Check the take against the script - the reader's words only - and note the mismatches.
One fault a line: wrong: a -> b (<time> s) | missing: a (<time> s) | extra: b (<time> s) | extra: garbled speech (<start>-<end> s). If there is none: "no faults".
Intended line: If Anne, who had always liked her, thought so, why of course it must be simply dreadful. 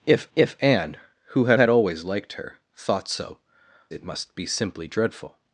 extra: if (0.3 s)
extra: had (1.6 s)
missing: why of course (3.4 s)